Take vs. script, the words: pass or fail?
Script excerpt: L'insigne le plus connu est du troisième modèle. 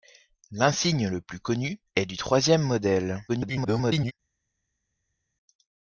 fail